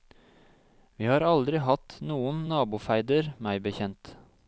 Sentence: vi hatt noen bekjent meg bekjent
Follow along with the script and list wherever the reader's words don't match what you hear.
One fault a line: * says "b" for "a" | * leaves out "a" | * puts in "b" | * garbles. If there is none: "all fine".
* puts in "har aldri"
* says "nabofeider" for "bekjent"